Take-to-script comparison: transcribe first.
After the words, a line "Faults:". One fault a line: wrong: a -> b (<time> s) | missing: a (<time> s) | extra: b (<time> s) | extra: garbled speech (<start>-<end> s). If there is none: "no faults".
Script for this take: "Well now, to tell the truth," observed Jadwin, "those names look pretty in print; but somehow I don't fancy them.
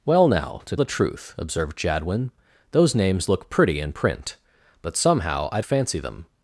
"Well now, to the truth," observed Jadwin, "those names look pretty in print; but somehow I fancy them.
Faults:
missing: tell (0.8 s)
missing: don't (5.6 s)